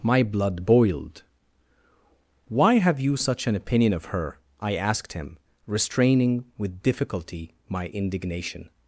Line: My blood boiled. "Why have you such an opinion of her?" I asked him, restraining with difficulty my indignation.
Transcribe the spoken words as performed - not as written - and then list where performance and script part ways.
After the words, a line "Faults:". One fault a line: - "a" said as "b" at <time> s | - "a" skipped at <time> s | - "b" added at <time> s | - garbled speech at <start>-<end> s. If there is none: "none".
My blood boiled. "Why have you such an opinion of her?" I asked him, restraining with difficulty my indignation.
Faults:
none